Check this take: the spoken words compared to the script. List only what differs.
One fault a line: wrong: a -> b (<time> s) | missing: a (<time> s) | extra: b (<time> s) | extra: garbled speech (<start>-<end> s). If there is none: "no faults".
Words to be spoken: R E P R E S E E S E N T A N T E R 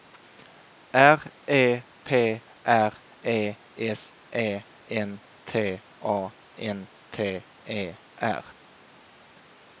missing: E S E (4.6 s)